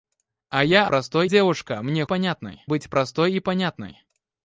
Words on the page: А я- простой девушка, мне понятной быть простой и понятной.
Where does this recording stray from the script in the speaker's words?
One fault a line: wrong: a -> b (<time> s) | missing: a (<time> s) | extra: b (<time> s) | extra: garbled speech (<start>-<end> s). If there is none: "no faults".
no faults